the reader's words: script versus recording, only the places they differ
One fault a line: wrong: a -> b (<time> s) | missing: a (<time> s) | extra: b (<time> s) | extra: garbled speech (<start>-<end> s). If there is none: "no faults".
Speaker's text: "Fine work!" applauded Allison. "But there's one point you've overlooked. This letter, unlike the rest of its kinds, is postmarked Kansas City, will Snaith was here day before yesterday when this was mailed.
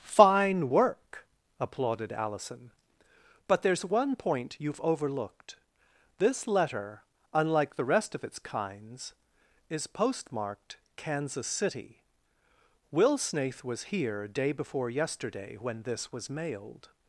no faults